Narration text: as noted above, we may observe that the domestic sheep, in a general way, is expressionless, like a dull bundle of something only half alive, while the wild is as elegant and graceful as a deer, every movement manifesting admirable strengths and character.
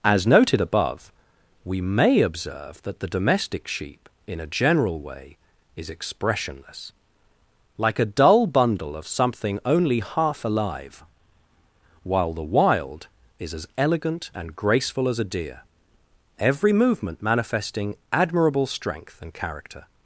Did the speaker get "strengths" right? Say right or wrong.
wrong